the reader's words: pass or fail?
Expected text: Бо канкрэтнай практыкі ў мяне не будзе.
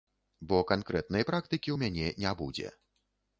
pass